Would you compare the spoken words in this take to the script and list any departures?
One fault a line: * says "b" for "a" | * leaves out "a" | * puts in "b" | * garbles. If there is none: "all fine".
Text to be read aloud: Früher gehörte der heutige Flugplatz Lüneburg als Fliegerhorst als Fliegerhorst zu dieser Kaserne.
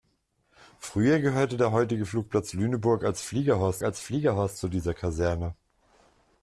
all fine